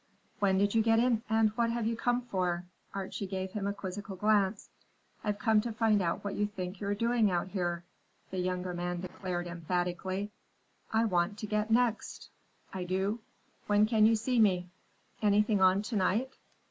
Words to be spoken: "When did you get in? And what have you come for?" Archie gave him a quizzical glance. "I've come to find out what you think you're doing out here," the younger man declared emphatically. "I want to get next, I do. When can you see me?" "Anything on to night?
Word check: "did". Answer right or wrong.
right